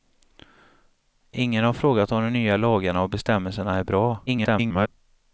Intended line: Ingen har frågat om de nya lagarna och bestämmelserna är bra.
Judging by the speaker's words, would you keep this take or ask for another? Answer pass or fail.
fail